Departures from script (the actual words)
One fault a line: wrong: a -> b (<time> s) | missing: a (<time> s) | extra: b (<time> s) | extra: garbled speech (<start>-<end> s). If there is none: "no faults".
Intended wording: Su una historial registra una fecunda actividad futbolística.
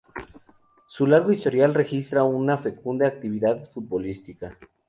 wrong: una -> largo (1.1 s)